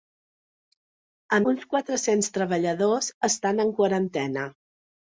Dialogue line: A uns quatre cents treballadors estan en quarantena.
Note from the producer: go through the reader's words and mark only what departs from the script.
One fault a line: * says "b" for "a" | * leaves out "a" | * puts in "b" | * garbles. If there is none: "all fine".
all fine